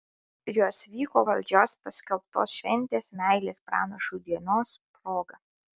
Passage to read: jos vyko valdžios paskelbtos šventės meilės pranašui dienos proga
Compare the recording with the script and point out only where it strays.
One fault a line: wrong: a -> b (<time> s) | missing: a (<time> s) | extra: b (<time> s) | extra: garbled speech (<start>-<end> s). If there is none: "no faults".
no faults